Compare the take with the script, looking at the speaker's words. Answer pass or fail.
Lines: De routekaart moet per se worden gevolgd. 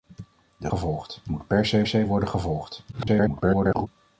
fail